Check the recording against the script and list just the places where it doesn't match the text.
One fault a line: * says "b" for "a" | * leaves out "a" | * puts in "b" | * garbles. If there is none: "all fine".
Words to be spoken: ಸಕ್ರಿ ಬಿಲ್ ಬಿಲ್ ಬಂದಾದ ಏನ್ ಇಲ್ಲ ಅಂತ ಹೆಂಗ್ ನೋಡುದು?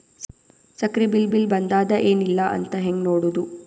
all fine